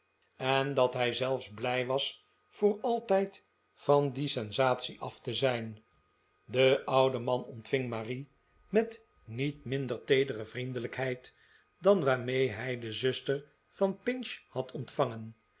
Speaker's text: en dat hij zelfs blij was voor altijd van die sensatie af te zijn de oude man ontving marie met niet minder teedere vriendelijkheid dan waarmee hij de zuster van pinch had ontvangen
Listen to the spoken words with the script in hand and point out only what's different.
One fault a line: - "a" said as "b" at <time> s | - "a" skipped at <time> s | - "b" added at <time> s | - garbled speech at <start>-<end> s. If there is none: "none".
none